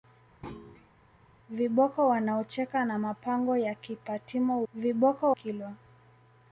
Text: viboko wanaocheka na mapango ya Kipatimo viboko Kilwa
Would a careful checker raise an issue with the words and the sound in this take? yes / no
yes